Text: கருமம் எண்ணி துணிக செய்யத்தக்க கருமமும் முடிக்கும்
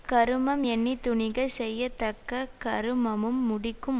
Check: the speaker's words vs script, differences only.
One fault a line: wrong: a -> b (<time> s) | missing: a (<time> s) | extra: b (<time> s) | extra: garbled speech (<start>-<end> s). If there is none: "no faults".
no faults